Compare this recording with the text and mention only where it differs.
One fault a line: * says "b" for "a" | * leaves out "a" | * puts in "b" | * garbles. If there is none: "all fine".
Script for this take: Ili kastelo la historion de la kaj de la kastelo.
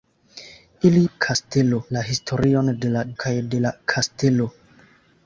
all fine